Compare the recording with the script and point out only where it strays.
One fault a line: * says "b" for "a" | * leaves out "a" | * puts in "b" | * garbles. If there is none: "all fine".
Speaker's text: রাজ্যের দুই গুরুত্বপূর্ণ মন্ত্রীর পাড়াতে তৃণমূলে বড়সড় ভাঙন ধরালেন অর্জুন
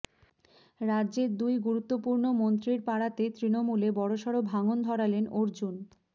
all fine